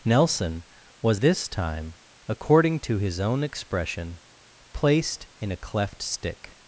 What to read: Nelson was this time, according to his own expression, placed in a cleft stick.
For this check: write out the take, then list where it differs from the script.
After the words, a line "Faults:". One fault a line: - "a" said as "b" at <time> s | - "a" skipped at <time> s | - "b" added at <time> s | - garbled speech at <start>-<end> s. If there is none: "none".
Nelson was this time, according to his own expression, placed in a cleft stick.
Faults:
none